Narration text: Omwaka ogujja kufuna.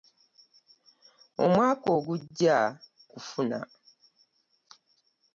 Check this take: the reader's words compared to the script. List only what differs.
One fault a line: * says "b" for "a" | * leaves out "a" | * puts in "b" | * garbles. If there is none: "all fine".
all fine